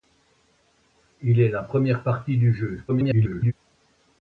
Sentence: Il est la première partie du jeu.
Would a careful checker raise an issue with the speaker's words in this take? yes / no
yes